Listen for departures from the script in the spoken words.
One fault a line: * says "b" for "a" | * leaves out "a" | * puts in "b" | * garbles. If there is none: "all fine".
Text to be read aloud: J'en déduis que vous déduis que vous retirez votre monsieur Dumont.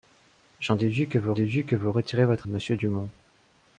all fine